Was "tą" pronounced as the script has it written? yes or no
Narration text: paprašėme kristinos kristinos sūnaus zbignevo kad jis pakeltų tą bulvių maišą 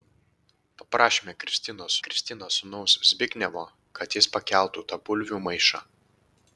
yes